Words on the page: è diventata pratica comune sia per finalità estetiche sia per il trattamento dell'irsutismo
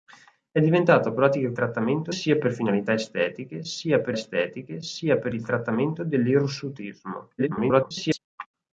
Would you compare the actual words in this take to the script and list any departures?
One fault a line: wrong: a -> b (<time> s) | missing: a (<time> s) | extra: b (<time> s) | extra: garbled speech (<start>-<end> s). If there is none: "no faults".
wrong: comune -> trattamento (1.5 s)
extra: estetiche sia per (4.1 s)
extra: garbled speech (7.4-8.2 s)